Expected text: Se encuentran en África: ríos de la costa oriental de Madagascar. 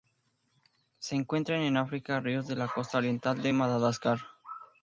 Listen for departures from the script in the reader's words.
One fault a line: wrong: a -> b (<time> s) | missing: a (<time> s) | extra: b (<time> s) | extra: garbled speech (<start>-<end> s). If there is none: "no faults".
no faults